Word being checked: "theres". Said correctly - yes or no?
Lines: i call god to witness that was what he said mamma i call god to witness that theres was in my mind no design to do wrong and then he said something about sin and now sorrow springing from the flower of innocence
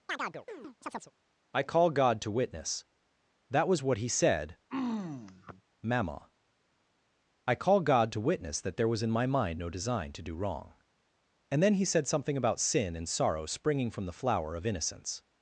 no